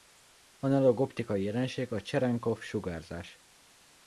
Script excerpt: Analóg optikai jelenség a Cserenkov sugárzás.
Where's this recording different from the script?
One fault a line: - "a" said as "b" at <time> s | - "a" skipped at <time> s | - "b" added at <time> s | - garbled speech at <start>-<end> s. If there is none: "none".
none